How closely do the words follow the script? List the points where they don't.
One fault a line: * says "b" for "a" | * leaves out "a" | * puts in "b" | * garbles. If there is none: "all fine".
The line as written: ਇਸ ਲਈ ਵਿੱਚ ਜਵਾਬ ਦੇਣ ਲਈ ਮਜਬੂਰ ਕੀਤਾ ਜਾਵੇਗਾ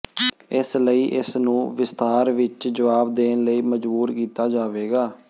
* puts in "ਇਸ ਨੂੰ ਵਿਸਥਾਰ"